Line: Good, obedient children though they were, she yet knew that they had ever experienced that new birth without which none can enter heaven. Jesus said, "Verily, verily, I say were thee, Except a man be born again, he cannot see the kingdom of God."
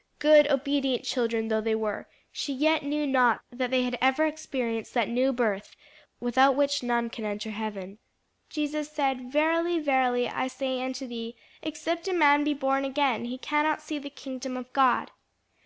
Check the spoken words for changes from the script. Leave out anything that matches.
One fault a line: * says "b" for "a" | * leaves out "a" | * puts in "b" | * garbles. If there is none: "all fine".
* puts in "not"
* says "unto" for "were"